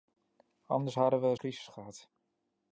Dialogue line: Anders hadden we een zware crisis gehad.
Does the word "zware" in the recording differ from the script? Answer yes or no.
yes